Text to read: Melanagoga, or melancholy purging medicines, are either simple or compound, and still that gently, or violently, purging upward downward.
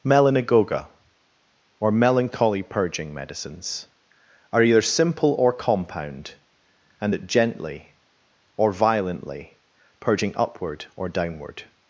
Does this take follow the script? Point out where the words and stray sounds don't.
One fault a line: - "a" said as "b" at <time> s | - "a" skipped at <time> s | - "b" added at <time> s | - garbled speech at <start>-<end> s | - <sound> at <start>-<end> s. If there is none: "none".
- "still" skipped at 7.1 s
- "or" added at 11.0 s